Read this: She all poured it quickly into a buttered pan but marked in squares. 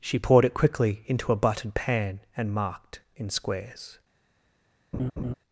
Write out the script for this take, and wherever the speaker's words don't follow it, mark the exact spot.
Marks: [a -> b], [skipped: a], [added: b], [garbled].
She [skipped: all] poured it quickly into a buttered pan [but -> and] marked in squares.